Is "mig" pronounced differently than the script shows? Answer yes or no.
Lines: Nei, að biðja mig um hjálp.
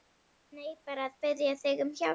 yes